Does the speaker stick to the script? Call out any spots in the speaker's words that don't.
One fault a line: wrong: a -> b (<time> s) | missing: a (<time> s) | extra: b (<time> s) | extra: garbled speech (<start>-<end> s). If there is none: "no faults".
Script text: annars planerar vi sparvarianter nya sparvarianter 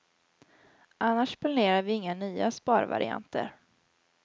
wrong: sparvarianter -> inga (1.9 s)